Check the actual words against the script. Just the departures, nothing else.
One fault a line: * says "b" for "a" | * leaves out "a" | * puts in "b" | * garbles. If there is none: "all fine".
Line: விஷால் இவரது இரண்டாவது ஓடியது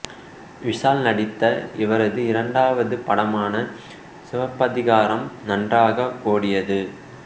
* puts in "நடித்த"
* puts in "படமான சிவப்பதிகாரம் நன்றாக"